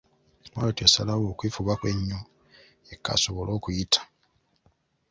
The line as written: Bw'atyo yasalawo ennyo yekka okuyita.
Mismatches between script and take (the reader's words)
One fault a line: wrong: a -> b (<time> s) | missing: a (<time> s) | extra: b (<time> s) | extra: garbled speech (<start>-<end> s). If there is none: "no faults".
extra: okwefubako (1.3 s)
extra: asobole (3.2 s)